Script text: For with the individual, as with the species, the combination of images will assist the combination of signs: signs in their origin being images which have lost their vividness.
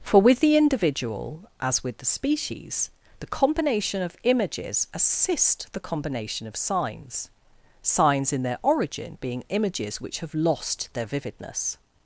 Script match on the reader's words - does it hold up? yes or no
no